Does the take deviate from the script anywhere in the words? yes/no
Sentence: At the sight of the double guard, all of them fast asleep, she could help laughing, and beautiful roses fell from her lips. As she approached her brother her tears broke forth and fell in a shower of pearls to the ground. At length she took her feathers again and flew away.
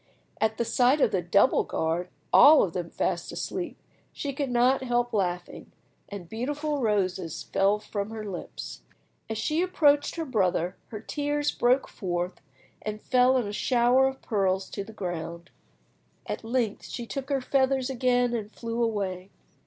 yes